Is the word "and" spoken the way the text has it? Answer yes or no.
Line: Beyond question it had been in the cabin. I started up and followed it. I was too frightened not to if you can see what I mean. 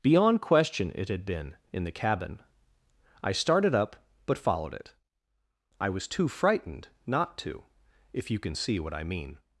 no